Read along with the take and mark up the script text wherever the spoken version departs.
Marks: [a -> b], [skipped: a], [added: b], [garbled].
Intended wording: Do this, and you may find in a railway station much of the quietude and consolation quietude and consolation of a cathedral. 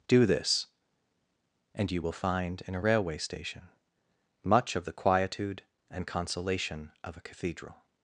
Do this, and you [may -> will] find in a railway station much of the quietude and consolation [skipped: quietude and consolation] of a cathedral.